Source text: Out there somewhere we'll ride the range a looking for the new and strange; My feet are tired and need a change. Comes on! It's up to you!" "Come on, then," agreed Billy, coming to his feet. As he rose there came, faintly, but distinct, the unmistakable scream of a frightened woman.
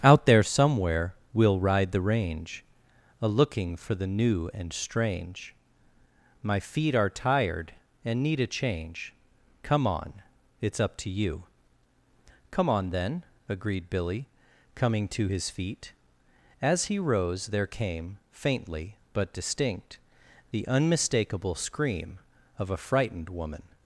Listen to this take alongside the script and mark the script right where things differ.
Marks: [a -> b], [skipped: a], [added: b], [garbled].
Out there somewhere we'll ride the range a looking for the new and strange; My feet are tired and need a change. [Comes -> Come] on! It's up to you!" "Come on, then," agreed Billy, coming to his feet. As he rose there came, faintly, but distinct, the unmistakable scream of a frightened woman.